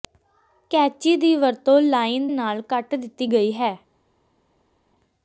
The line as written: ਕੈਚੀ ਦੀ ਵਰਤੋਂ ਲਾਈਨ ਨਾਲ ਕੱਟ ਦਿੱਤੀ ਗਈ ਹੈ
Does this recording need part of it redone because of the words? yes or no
no